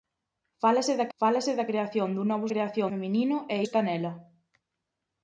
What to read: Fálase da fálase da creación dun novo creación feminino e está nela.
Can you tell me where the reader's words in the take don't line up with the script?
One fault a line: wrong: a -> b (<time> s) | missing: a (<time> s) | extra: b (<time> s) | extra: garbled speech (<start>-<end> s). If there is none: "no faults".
no faults